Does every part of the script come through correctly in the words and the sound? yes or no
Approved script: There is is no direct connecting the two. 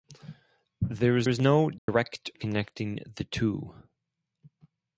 no